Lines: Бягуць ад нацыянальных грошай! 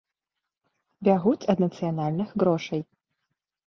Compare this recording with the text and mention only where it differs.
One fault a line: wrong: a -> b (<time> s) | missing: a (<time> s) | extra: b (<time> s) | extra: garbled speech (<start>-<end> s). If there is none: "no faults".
no faults